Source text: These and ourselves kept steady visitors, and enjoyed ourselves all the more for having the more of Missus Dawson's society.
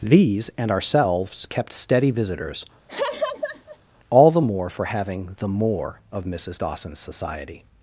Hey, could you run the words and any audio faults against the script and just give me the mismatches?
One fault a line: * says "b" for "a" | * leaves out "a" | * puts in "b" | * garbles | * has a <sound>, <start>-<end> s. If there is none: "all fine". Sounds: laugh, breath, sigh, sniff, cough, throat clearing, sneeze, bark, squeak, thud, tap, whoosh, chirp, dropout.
* leaves out "and enjoyed ourselves"
* has a laugh, 2.9-3.8 s